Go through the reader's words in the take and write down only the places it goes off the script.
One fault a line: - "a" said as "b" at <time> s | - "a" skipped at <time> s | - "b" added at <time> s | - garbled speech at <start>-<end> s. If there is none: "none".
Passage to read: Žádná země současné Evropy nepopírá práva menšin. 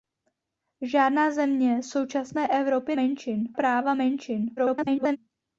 - "nepopírá" said as "menšin" at 2.9 s
- garbled speech at 4.6-5.2 s